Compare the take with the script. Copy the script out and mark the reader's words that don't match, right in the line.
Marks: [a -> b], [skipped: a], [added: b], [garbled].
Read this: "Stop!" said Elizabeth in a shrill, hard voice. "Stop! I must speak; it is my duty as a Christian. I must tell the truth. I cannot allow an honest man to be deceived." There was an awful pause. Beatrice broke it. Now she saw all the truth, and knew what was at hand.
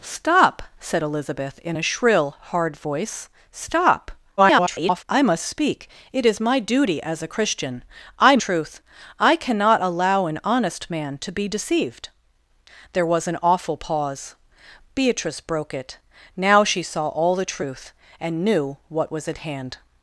"Stop!" said Elizabeth in a shrill, hard voice. "Stop! [garbled] I must speak; it is my duty as a Christian. I [skipped: must tell the] truth. I cannot allow an honest man to be deceived." There was an awful pause. Beatrice broke it. Now she saw all the truth, and knew what was at hand.